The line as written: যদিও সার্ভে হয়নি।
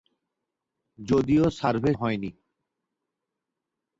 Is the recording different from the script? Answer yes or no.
no